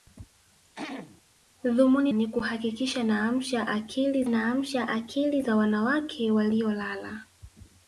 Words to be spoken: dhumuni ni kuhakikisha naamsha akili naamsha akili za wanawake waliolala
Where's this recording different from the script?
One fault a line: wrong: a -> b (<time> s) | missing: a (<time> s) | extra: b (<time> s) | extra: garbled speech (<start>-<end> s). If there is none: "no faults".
no faults